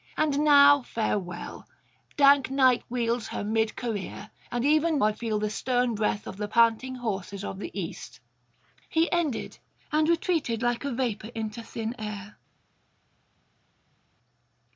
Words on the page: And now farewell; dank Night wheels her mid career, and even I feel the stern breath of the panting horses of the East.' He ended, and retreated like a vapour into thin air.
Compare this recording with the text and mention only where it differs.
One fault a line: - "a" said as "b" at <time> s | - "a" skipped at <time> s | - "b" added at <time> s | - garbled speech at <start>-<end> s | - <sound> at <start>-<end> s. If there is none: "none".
none